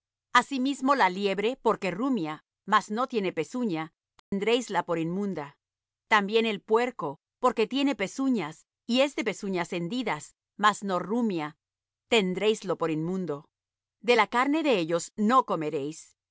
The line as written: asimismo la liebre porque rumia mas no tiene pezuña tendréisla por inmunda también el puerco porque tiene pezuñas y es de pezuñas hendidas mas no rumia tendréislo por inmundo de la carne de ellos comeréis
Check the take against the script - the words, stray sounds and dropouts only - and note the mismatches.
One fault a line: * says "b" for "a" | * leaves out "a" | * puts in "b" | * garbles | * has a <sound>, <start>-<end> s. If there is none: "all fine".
* has a dropout, 4.2-4.3 s
* puts in "no"